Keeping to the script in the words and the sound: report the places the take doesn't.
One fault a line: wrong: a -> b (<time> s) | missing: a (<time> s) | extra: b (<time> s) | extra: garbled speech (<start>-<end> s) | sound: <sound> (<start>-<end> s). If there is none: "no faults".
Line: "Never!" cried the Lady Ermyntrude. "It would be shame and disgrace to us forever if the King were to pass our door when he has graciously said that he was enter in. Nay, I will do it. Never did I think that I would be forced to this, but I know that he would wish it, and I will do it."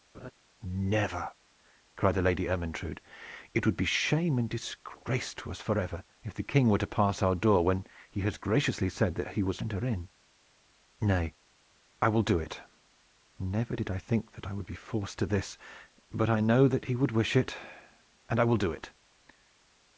sound: laugh (0.1-0.3 s)